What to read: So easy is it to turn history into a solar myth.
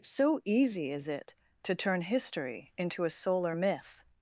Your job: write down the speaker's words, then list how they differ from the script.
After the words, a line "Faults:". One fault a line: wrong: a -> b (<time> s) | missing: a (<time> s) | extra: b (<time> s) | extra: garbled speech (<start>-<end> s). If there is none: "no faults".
So easy is it to turn history into a solar myth.
Faults:
no faults